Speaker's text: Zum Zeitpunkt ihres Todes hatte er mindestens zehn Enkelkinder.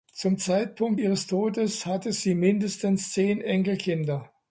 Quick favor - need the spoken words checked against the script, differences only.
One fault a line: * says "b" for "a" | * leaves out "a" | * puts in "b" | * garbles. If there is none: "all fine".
* says "sie" for "er"